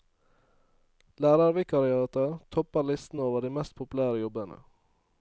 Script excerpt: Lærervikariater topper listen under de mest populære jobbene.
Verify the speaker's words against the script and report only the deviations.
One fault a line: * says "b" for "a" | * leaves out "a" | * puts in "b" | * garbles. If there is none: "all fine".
* says "over" for "under"